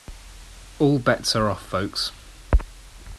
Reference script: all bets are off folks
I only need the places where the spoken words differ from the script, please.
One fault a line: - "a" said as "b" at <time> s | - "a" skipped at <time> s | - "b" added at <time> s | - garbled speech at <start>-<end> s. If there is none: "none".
none